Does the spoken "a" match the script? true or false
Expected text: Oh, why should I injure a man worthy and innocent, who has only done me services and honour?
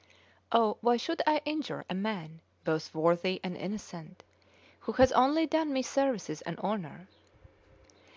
true